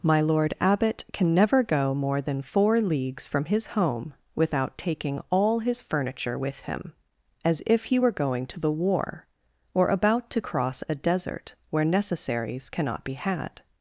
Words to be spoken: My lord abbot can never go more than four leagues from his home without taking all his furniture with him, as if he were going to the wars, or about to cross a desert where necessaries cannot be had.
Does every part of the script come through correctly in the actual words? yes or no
no